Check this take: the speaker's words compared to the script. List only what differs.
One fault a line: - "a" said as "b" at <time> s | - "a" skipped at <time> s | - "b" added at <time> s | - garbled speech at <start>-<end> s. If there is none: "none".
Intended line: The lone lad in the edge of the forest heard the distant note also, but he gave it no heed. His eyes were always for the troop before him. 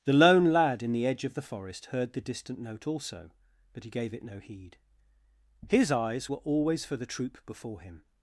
none